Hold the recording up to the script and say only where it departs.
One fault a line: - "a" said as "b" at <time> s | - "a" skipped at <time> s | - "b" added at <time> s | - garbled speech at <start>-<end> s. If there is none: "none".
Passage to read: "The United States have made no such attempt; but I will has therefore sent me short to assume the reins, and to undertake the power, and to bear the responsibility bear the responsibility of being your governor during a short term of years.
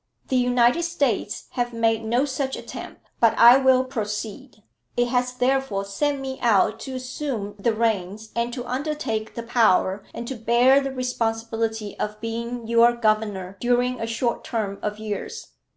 - "proceed It" added at 3.8 s
- "short" said as "out" at 6.4 s
- "bear the responsibility" skipped at 12.0 s